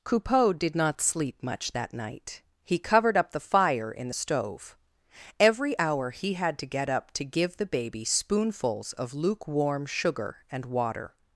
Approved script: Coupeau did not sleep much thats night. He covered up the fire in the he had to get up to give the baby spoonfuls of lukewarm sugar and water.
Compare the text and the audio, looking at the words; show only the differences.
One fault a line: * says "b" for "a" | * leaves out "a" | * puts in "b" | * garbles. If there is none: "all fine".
* says "that" for "thats"
* puts in "stove Every hour"